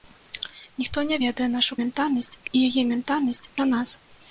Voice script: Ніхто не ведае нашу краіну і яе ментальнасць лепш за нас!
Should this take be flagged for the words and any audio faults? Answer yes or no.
yes